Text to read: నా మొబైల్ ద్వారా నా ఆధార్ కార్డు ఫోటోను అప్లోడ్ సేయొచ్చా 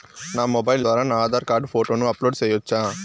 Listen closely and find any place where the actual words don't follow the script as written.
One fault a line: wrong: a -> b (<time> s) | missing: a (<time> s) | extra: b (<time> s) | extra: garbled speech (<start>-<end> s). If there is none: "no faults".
no faults